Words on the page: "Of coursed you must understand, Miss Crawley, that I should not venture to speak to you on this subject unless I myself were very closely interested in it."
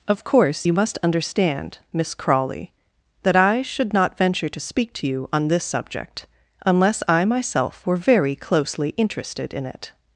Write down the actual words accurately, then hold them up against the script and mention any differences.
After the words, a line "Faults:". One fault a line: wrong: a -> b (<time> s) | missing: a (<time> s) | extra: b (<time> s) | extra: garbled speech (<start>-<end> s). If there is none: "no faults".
"Of course you must understand, Miss Crawley, that I should not venture to speak to you on this subject unless I myself were very closely interested in it."
Faults:
wrong: coursed -> course (0.2 s)